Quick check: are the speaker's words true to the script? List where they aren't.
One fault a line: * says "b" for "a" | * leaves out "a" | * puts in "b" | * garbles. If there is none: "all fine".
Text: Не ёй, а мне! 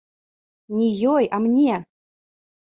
all fine